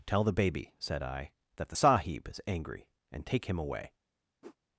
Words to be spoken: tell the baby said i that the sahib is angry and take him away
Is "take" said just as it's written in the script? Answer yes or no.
yes